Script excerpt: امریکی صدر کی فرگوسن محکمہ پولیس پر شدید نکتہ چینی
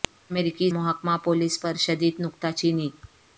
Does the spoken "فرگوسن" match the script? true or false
false